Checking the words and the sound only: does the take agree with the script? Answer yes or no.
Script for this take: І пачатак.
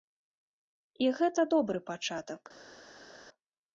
no